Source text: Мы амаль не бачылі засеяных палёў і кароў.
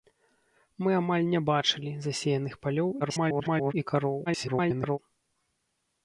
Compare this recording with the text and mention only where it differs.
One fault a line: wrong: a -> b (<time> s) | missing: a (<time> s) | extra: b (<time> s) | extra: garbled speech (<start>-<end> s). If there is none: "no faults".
extra: garbled speech (3.0-3.7 s)
extra: garbled speech (4.3-5.0 s)